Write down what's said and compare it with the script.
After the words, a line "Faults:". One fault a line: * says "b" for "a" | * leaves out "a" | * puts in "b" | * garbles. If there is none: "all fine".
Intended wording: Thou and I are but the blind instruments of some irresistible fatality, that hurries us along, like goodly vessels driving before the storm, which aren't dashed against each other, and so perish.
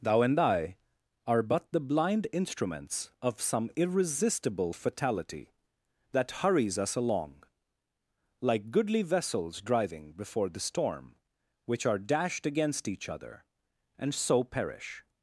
Thou and I are but the blind instruments of some irresistible fatality, that hurries us along, like goodly vessels driving before the storm, which are dashed against each other, and so perish.
Faults:
* says "are" for "aren't"